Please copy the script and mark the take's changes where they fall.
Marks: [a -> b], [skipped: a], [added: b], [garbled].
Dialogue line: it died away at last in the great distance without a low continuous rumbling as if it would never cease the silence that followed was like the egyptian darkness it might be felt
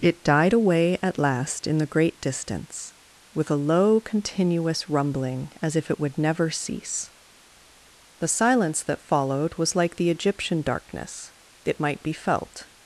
it died away at last in the great distance [without -> with] a low continuous rumbling as if it would never cease the silence that followed was like the egyptian darkness it might be felt